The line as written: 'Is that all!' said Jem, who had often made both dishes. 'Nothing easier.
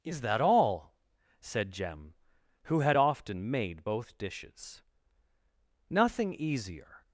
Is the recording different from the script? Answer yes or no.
no